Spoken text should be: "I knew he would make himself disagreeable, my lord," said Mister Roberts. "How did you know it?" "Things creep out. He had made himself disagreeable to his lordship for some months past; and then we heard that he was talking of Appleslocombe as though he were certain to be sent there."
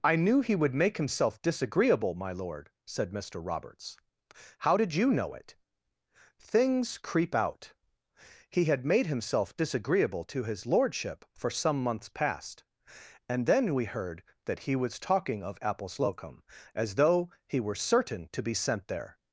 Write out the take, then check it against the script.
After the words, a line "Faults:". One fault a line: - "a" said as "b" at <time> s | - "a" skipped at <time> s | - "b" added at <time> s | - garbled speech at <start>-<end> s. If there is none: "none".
"I knew he would make himself disagreeable, my lord," said Mister Roberts. "How did you know it?" "Things creep out. He had made himself disagreeable to his lordship for some months past; and then we heard that he was talking of Appleslocombe as though he were certain to be sent there."
Faults:
none